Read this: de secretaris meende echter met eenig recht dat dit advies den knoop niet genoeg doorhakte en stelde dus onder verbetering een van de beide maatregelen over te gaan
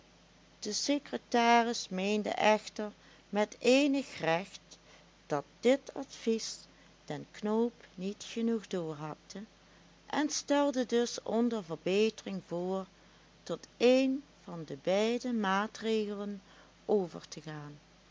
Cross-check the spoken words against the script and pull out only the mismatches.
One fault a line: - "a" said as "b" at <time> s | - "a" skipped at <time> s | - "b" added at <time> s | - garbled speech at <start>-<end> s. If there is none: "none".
- "voor tot" added at 12.5 s